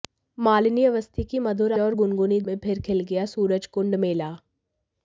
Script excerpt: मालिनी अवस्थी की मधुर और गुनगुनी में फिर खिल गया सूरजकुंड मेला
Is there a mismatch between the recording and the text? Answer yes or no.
no